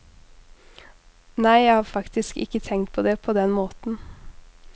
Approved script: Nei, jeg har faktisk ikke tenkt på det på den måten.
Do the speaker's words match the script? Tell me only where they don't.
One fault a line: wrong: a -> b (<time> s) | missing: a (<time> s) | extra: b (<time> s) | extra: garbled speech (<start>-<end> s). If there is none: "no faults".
no faults